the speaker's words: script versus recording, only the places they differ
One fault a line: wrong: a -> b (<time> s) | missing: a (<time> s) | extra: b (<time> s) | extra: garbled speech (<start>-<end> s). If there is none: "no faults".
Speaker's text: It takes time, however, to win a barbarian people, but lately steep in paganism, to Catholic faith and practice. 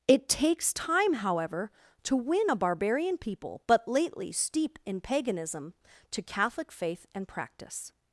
no faults